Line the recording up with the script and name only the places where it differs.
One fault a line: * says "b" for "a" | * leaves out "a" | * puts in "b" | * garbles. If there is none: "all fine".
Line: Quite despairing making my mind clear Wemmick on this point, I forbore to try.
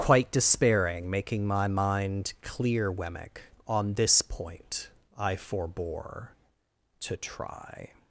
all fine